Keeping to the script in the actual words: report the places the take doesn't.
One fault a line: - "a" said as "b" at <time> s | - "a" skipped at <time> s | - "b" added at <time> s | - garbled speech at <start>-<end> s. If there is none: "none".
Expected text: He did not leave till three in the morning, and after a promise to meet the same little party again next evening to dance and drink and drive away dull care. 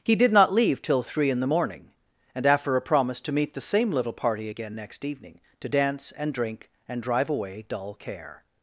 none